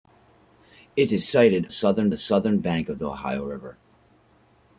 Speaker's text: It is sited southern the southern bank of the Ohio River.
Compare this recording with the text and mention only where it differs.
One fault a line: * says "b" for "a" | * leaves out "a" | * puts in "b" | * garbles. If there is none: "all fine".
all fine